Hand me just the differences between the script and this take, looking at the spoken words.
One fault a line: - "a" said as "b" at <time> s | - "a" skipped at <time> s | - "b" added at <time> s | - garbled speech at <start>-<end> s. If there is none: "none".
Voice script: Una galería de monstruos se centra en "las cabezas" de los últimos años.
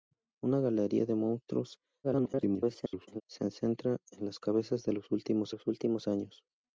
- garbled speech at 2.0-3.2 s
- "los últimos" added at 5.5 s